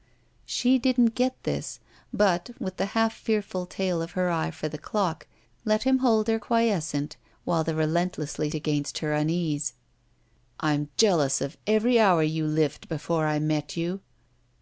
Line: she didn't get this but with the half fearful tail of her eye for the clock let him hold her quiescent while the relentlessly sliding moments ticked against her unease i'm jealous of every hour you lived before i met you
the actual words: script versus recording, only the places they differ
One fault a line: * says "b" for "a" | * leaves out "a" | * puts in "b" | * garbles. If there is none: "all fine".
* leaves out "sliding moments ticked"